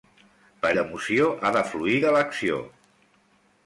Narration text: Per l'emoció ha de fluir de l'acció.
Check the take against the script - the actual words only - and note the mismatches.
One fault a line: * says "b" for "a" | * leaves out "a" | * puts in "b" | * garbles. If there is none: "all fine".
all fine